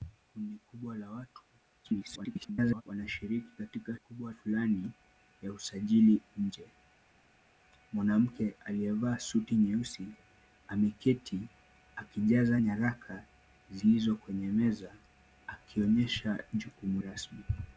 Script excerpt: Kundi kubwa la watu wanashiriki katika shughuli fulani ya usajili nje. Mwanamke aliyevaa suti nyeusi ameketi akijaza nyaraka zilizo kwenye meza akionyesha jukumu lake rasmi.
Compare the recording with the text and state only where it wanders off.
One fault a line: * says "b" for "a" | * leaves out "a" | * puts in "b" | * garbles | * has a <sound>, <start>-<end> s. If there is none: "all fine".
* garbles
* says "kubwa" for "shughuli"
* leaves out "lake"